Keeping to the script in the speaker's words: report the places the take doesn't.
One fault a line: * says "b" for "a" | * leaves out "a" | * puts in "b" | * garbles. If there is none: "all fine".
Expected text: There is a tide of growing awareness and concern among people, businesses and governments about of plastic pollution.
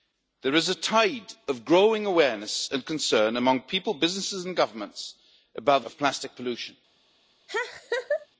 all fine